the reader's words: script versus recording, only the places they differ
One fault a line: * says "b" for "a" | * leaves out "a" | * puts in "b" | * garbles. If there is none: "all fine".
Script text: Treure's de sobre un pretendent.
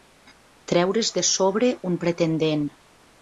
all fine